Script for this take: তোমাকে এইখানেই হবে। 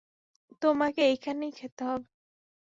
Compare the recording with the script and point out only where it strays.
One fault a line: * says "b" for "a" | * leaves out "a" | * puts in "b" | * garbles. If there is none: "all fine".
* puts in "খেতে"